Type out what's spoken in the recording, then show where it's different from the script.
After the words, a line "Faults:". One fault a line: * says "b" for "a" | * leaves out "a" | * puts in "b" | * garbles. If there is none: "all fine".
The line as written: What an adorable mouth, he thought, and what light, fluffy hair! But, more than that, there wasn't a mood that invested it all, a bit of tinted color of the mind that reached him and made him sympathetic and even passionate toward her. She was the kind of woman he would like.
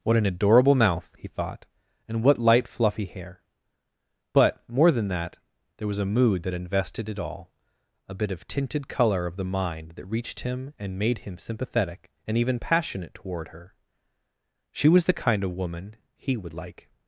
What an adorable mouth, he thought, and what light, fluffy hair! But, more than that, there was a mood that invested it all, a bit of tinted color of the mind that reached him and made him sympathetic and even passionate toward her. She was the kind of woman he would like.
Faults:
* says "was" for "wasn't"